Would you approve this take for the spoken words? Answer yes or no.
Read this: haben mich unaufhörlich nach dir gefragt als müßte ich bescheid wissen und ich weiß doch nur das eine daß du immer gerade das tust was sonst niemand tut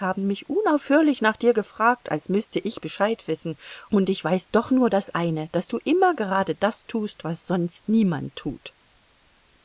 yes